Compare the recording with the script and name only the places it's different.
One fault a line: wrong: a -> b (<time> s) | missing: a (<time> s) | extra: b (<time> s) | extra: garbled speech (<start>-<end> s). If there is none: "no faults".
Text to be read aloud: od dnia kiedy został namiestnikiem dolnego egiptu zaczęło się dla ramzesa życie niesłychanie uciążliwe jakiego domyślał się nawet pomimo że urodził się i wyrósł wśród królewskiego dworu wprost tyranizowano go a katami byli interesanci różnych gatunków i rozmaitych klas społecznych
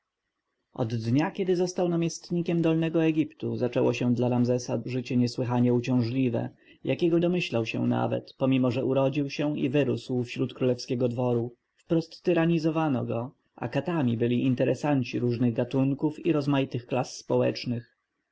no faults